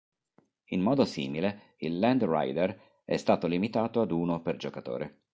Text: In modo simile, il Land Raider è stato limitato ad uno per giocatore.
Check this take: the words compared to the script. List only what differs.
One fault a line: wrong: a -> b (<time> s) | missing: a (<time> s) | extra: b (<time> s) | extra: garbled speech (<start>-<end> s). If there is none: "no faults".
no faults